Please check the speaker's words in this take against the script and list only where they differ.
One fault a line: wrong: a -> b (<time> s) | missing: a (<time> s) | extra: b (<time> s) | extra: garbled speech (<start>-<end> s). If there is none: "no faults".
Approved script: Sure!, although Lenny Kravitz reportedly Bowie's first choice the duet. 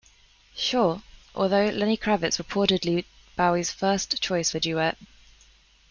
no faults